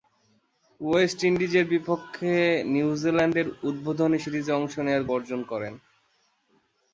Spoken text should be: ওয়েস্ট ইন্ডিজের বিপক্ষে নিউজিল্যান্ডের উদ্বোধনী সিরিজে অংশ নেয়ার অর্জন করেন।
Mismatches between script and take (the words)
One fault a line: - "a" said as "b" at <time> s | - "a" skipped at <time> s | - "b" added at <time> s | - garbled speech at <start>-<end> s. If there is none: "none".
none